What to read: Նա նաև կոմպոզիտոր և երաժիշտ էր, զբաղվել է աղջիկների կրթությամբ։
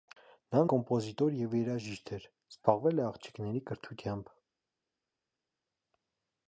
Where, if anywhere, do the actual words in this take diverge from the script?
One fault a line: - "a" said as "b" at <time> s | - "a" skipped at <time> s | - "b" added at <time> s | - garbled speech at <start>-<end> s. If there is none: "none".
- "նաև" skipped at 0.6 s